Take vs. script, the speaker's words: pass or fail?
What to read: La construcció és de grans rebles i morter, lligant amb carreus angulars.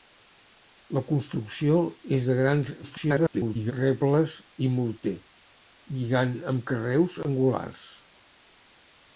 fail